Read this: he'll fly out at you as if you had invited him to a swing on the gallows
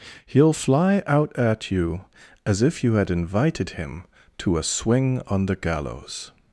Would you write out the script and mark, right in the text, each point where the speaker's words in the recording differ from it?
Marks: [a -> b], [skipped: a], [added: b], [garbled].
he'll fly out at you as if you had invited him to a swing on the gallows